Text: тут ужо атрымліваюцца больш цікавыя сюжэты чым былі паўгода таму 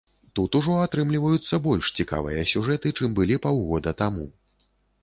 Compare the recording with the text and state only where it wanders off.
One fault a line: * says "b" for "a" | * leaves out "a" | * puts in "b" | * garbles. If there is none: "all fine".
all fine